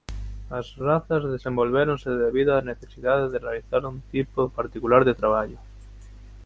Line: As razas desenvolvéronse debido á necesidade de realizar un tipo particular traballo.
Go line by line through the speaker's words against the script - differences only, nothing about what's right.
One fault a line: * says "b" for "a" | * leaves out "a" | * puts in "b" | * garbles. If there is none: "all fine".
* puts in "de"